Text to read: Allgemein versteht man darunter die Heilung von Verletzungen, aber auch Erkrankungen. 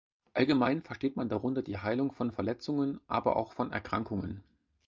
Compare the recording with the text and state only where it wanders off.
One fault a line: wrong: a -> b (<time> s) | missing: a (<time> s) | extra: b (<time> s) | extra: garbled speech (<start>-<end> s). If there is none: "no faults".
extra: von (3.5 s)